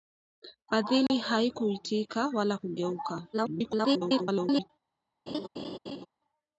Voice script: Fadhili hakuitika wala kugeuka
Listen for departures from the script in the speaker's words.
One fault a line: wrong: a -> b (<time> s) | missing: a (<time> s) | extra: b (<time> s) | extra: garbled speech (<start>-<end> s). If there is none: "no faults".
extra: garbled speech (3.3-4.7 s)